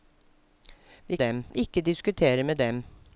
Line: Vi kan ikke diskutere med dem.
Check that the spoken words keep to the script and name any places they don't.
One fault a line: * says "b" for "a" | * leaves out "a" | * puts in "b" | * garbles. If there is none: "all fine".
* says "dem" for "kan"